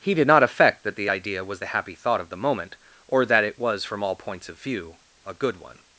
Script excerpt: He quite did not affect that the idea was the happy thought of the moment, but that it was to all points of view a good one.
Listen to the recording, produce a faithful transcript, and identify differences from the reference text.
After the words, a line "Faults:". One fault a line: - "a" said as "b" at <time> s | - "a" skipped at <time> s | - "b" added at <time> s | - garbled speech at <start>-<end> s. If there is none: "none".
He did not affect that the idea was the happy thought of the moment, or that it was from all points of view a good one.
Faults:
- "quite" skipped at 0.1 s
- "but" said as "or" at 3.1 s
- "to" said as "from" at 3.8 s